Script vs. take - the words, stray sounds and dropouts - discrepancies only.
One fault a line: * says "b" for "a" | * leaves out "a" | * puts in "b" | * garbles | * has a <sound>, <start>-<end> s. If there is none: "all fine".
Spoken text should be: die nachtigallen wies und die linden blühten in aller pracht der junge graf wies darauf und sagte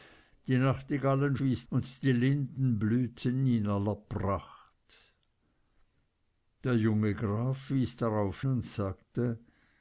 all fine